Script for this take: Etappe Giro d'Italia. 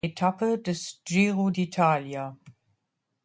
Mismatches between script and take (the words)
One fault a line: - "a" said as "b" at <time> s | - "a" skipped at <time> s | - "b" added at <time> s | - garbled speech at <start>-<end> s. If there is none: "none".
- "des" added at 0.6 s